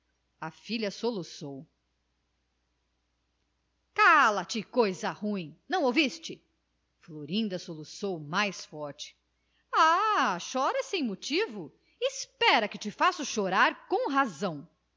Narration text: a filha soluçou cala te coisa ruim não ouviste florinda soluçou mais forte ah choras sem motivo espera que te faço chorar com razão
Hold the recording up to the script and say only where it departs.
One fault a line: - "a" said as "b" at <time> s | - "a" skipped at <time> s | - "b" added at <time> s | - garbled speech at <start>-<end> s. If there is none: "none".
none